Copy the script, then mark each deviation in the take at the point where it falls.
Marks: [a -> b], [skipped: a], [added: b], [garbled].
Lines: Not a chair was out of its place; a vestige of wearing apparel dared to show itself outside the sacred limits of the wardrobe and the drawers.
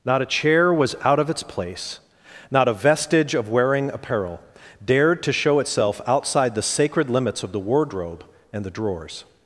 Not a chair was out of its place; [added: not] a vestige of wearing apparel dared to show itself outside the sacred limits of the wardrobe and the drawers.